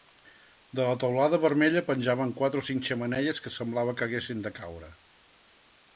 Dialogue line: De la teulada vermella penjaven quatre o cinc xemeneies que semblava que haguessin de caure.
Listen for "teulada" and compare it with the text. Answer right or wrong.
right